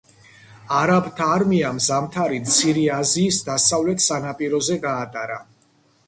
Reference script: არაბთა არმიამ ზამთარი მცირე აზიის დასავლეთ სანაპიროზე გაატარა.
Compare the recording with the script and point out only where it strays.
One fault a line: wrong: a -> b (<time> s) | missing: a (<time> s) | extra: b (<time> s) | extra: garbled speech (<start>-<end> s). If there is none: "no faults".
no faults